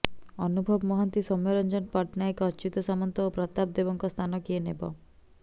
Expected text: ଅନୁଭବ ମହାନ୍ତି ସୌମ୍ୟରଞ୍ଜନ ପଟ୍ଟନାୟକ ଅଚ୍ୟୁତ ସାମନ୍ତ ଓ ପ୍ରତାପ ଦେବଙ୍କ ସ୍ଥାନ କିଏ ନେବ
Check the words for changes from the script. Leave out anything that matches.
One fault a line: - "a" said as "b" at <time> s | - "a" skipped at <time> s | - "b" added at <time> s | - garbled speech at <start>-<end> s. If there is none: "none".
none